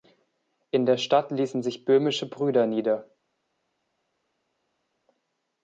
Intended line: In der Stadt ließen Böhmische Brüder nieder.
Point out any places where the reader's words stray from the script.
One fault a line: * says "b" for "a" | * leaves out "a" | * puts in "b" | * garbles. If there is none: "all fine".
* puts in "sich"